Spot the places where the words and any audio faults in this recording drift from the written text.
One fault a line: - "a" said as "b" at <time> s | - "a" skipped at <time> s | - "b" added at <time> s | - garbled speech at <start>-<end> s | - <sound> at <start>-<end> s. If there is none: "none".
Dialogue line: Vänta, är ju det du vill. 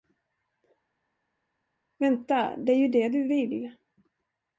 - "det" added at 2.6 s